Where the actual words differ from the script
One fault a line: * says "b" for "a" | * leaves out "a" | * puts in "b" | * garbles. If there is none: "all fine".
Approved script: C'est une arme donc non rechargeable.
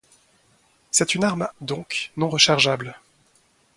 all fine